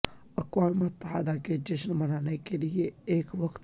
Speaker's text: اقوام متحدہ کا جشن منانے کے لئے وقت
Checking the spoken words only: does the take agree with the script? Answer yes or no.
no